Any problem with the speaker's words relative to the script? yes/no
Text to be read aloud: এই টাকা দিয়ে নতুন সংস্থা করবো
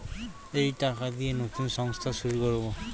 yes